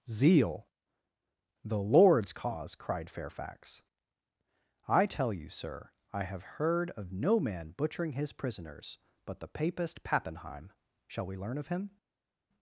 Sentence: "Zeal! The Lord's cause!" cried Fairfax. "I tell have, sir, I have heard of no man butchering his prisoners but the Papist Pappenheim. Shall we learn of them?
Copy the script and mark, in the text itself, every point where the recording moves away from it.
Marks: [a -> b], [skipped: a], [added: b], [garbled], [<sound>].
"Zeal! The Lord's cause!" cried Fairfax. "I tell [have, -> you] sir, I have heard of no man butchering his prisoners but the Papist Pappenheim. Shall we learn of [them? -> him]